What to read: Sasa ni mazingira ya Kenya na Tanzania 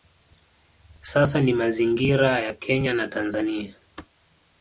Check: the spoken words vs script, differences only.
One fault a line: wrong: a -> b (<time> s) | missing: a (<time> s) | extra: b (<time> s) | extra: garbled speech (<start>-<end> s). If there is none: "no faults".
no faults